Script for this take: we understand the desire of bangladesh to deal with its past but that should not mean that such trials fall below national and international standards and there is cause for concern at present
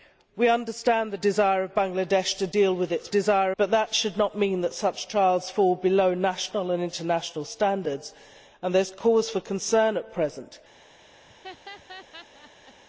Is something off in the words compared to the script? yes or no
yes